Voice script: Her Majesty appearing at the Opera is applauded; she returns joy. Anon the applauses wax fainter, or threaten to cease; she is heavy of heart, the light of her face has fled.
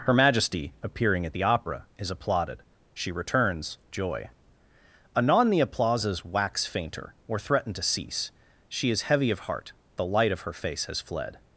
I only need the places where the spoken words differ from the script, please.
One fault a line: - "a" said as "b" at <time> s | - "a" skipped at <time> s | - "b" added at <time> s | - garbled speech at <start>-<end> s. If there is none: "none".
none